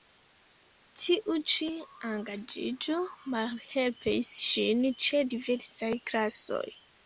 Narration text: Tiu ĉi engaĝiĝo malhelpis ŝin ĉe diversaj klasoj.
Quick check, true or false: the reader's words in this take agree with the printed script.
true